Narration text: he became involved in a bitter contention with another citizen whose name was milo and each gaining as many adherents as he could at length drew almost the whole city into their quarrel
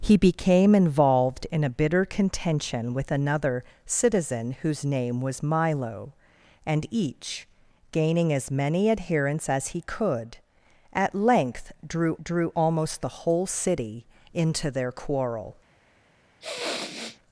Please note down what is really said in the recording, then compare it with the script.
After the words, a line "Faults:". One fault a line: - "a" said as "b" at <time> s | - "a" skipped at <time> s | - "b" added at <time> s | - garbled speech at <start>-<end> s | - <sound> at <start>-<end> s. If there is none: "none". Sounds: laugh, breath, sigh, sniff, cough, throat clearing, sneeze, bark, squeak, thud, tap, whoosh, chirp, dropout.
he became involved in a bitter contention with another citizen whose name was milo and each gaining as many adherents as he could at length drew drew almost the whole city into their quarrel
Faults:
- "drew" added at 12.2 s
- sniff at 16.4-17.2 s